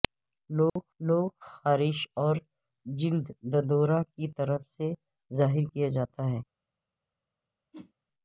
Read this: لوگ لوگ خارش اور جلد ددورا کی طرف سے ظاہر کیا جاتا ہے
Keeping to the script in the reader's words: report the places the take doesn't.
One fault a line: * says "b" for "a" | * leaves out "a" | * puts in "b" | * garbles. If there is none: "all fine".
all fine